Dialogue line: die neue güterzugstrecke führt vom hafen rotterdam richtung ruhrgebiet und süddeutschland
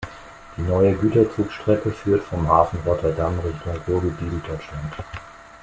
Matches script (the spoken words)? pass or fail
fail